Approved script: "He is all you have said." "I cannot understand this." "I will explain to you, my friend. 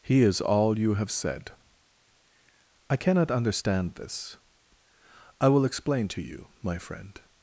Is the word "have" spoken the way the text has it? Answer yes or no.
yes